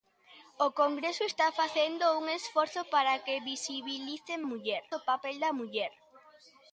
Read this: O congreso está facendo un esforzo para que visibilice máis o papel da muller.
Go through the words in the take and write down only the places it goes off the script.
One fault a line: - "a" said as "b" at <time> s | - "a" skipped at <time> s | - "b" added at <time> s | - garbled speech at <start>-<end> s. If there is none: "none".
- "máis" said as "muller" at 4.5 s